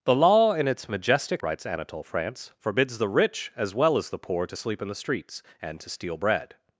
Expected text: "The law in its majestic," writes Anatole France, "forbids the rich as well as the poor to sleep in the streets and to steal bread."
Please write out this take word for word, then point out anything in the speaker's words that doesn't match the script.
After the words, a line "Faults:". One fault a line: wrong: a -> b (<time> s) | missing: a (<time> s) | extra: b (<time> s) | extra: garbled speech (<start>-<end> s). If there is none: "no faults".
"The law in its majestic," writes Anatole France, "forbids the rich as well as the poor to sleep in the streets and to steal bread."
Faults:
no faults